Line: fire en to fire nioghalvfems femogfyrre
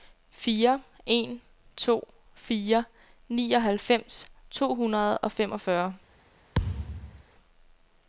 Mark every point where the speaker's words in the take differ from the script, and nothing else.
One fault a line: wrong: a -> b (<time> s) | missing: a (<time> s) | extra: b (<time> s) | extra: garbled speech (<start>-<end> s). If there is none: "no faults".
extra: to hundrede og (4.5 s)